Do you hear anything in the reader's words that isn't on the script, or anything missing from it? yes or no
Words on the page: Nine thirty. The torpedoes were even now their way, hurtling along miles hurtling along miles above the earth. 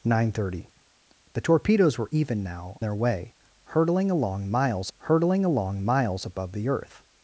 no